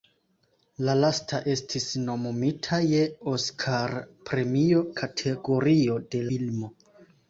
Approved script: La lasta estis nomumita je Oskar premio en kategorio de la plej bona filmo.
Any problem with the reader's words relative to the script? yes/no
yes